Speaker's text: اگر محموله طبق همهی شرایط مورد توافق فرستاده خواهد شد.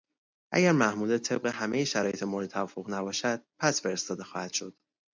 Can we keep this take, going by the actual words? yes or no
no